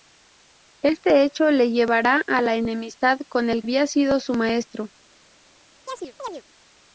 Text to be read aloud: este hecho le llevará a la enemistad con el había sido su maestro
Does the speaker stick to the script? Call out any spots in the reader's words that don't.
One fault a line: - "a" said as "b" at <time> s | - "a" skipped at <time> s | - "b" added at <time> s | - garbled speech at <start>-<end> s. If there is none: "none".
none